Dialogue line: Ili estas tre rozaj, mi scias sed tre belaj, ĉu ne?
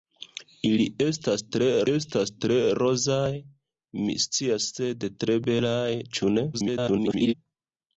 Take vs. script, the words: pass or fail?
fail